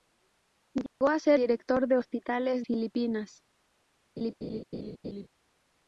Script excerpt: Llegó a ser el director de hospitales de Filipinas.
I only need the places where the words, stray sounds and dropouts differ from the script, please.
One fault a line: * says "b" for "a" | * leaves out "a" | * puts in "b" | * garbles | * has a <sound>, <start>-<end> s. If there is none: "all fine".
* has a dropout, 0.9-1.0 s
* leaves out "el"
* leaves out "de"
* has a laugh, 4.2-5.3 s